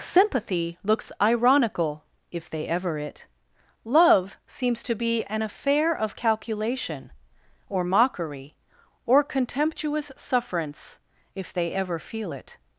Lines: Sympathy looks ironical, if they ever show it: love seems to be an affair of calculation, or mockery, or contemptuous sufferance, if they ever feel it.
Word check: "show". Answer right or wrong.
wrong